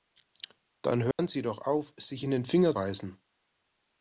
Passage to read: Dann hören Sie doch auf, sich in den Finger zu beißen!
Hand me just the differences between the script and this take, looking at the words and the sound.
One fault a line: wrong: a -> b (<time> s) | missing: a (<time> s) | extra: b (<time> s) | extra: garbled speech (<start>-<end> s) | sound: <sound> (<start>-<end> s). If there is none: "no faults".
sound: dropout (1.1-1.2 s)
missing: zu (2.8 s)